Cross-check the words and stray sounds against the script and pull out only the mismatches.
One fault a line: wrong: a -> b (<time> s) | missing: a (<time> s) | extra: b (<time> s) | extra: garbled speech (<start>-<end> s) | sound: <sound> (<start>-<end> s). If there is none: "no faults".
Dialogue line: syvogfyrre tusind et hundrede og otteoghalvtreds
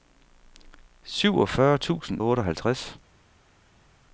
missing: et hundrede (2.2 s)